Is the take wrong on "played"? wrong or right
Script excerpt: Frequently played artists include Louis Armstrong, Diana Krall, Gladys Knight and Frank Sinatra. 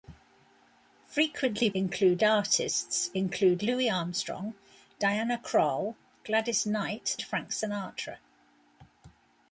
wrong